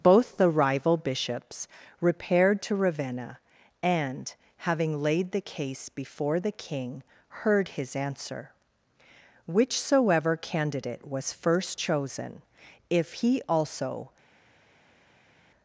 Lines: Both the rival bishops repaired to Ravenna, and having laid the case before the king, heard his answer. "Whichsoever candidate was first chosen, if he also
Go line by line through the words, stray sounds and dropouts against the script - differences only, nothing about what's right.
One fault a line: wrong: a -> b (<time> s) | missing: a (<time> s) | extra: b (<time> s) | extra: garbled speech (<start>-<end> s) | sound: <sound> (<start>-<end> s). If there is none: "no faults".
no faults